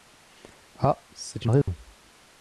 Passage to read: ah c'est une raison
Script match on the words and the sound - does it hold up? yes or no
no